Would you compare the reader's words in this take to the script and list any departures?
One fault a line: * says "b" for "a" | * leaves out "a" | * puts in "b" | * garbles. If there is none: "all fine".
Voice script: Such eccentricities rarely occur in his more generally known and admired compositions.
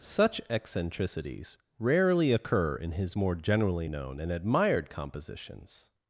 all fine